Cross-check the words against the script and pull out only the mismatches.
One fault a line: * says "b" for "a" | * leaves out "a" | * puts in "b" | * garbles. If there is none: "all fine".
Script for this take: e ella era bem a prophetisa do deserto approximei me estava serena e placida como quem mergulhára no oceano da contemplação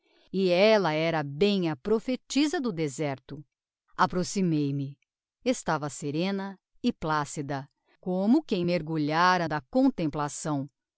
* leaves out "no oceano"